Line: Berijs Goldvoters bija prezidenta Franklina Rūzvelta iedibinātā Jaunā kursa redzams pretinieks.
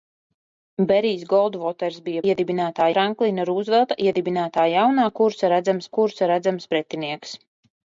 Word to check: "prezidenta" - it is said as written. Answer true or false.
false